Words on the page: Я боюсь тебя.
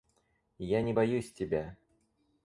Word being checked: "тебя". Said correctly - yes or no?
yes